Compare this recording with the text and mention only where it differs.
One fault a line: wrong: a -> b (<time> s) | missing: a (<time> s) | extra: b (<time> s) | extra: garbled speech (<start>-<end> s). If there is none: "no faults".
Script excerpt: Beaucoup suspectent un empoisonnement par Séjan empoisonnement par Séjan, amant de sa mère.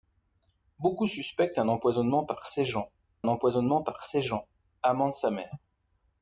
no faults